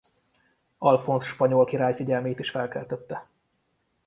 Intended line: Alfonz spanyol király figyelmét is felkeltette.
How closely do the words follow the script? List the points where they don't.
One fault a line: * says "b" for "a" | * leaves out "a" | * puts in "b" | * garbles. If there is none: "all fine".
all fine